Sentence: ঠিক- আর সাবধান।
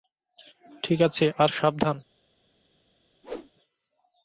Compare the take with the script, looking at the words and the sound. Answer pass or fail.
fail